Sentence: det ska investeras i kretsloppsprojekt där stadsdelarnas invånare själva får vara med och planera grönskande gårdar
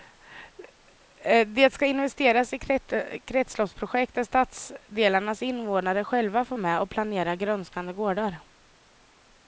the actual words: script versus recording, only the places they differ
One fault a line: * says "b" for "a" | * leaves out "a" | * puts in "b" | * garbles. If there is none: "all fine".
* leaves out "vara"